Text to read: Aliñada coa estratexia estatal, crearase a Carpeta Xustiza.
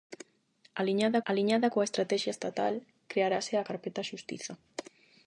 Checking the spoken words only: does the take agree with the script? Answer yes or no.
no